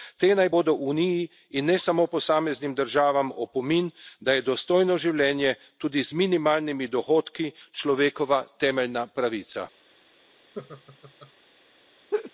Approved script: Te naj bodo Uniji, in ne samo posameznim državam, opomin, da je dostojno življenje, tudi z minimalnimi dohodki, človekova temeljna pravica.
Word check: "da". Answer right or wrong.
right